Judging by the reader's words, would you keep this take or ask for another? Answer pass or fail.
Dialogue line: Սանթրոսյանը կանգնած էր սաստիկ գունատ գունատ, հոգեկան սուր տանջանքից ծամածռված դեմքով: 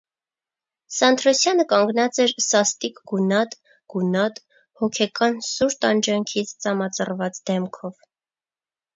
pass